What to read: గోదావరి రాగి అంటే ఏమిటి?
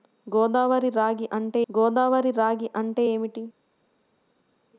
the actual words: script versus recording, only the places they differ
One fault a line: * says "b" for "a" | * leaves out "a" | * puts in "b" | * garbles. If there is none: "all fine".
* puts in "గోదావరి రాగి అంటే"